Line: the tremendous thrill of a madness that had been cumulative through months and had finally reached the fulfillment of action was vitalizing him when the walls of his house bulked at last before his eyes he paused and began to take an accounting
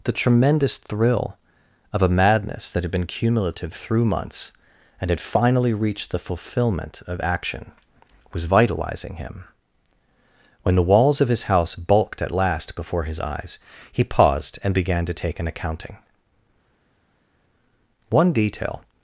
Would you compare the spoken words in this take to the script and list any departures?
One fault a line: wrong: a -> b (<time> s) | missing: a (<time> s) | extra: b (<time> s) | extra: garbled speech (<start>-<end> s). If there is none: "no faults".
extra: one detail (18.1 s)